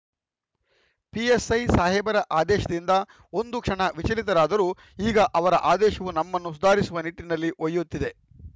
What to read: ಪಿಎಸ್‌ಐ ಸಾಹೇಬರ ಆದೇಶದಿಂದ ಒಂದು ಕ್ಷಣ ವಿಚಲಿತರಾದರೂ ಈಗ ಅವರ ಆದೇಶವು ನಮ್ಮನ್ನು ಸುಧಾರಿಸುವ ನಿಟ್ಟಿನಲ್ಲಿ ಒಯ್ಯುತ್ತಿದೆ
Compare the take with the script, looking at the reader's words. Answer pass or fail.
pass